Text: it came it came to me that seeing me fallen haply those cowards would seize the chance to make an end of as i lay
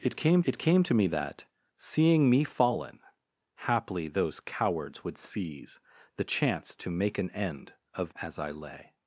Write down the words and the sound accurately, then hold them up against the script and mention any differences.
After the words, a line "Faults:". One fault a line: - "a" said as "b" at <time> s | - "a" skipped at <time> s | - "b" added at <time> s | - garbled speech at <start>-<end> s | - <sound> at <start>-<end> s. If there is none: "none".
it came it came to me that seeing me fallen haply those cowards would seize the chance to make an end of as i lay
Faults:
none